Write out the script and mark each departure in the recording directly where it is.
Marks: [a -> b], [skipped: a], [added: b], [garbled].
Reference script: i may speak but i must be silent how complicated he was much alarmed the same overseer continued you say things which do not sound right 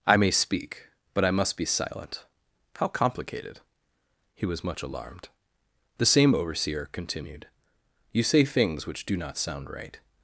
i may speak but i must be silent how complicated he was much alarmed the same overseer continued you say things which do not sound right